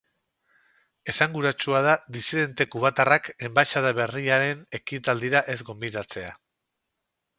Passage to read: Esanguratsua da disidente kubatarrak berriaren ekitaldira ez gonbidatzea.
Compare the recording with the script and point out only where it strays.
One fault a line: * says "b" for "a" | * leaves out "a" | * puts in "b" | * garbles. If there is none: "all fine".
* puts in "enbaxada"